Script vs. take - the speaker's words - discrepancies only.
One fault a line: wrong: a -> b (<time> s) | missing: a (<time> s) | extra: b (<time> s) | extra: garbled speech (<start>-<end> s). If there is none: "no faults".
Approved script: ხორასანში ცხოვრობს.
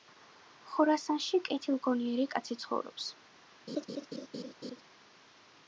extra: კეთილგონიერი კაცი (1.5 s)